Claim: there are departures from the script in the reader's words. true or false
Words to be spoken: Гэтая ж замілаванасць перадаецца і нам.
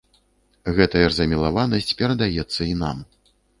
false